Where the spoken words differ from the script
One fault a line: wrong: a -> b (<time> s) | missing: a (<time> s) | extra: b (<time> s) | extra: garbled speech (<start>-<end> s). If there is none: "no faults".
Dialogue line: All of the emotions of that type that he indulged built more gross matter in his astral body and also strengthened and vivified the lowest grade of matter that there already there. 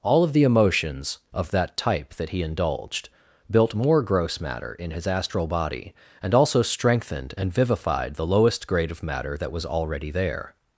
wrong: there -> was (9.5 s)